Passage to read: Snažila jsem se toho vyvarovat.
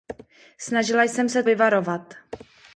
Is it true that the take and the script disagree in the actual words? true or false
true